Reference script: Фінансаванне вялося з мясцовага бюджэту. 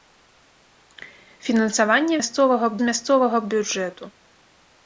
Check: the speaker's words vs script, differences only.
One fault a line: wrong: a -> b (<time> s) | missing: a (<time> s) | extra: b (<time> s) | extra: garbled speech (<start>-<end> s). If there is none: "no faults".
wrong: вялося -> мясцовага (2.2 s)